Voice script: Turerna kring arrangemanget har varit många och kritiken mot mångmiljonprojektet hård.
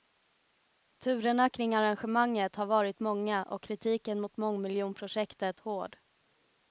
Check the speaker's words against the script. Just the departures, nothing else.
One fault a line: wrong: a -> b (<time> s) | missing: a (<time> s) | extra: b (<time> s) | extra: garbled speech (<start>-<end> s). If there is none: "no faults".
no faults